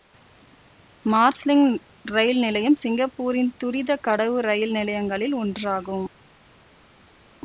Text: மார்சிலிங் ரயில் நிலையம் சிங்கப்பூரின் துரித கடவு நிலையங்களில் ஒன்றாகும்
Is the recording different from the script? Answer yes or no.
yes